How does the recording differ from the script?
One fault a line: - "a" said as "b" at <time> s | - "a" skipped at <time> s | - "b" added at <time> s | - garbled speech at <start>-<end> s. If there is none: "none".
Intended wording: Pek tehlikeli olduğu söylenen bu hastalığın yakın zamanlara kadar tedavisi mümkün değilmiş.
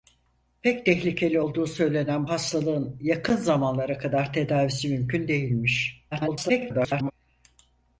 - "bu" skipped at 2.3 s
- garbled speech at 6.1-7.1 s